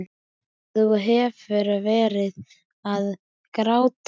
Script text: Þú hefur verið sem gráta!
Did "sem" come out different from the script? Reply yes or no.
yes